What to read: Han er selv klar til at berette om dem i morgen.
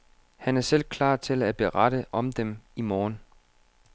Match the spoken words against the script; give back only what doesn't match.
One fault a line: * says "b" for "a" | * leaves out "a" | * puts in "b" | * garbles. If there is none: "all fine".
all fine